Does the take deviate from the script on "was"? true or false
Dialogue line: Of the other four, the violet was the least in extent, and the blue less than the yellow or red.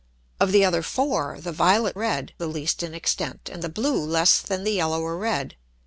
true